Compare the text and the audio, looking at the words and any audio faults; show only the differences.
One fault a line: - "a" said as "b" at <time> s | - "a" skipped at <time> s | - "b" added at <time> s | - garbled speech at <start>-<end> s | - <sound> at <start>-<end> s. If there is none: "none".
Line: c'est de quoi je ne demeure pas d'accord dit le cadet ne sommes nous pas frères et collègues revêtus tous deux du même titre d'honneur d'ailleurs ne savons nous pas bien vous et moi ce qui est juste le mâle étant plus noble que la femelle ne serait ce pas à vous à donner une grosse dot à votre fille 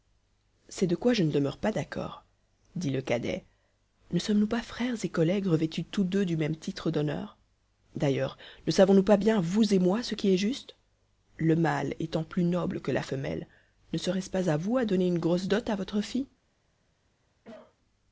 - cough at 17.4-17.8 s